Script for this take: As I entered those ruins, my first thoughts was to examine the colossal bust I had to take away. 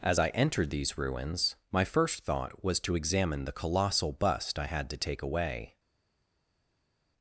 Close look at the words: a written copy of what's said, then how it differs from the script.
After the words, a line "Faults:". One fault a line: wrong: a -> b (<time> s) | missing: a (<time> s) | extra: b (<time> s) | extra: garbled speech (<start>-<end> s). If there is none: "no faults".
As I entered these ruins, my first thought was to examine the colossal bust I had to take away.
Faults:
wrong: those -> these (0.7 s)
wrong: thoughts -> thought (2.2 s)